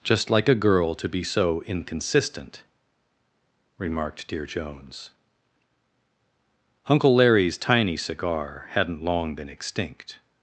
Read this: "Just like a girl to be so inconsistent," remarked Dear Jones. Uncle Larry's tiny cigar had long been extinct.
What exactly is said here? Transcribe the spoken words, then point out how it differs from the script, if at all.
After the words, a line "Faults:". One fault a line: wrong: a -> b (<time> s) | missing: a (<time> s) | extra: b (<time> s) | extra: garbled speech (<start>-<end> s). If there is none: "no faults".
"Just like a girl to be so inconsistent," remarked Dear Jones. Uncle Larry's tiny cigar hadn't long been extinct.
Faults:
wrong: had -> hadn't (8.7 s)